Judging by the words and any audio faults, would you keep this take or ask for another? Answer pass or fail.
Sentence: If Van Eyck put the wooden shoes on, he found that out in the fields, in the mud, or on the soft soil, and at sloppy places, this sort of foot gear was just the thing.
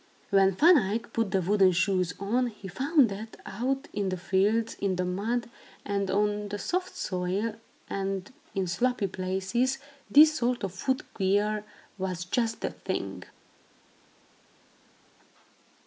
fail